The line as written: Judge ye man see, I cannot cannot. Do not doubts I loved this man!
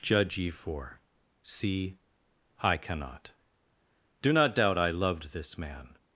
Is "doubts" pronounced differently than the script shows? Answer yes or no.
yes